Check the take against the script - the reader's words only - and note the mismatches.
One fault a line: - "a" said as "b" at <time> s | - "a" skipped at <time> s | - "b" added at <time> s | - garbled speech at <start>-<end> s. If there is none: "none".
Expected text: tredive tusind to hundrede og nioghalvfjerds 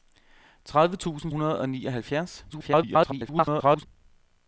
- "to" skipped at 1.3 s
- garbled speech at 2.5-3.9 s